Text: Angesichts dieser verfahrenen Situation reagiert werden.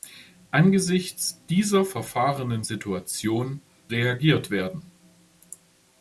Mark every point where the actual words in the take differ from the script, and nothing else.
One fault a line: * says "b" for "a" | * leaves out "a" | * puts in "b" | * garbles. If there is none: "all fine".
all fine